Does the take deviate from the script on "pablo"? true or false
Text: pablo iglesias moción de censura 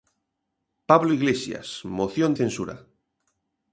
false